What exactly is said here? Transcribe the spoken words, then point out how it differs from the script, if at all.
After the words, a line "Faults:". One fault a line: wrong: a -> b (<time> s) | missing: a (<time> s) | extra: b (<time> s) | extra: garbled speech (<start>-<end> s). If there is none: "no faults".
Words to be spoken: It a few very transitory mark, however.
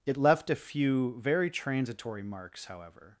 It left a few very transitory marks, however.
Faults:
extra: left (0.2 s)
wrong: mark -> marks (2.2 s)